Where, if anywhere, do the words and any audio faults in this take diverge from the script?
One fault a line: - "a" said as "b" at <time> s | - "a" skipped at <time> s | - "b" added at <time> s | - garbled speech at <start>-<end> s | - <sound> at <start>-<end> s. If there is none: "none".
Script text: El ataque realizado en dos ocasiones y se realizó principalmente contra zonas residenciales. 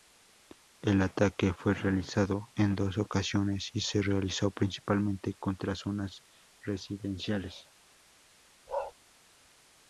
- "fue" added at 1.5 s
- bark at 8.7-8.9 s